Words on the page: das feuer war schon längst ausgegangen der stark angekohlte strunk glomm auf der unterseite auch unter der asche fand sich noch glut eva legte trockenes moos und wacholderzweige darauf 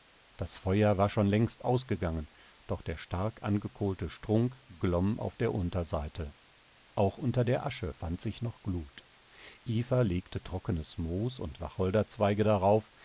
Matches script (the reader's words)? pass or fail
fail